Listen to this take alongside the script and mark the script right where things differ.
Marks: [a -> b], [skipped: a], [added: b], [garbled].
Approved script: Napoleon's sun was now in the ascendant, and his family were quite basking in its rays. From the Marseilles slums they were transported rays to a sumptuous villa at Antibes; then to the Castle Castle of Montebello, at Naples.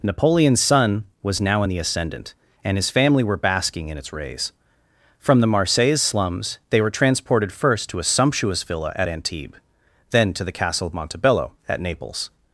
Napoleon's sun was now in the ascendant, and his family were [skipped: quite] basking in its rays. From the Marseilles slums they were transported [rays -> first] to a sumptuous villa at Antibes; then to the Castle [skipped: Castle] of Montebello, at Naples.